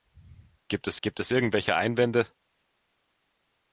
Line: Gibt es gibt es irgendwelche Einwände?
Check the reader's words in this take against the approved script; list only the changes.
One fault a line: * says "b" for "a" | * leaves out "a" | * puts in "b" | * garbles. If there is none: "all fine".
all fine